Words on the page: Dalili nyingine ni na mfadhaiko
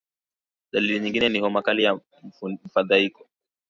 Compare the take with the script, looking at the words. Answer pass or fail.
fail